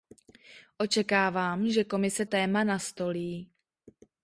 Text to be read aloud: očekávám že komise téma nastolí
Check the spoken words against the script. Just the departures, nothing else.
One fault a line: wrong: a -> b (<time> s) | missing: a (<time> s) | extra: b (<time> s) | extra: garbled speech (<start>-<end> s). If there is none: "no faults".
no faults